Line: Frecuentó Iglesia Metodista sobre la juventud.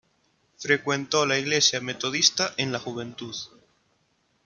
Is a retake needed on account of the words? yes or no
yes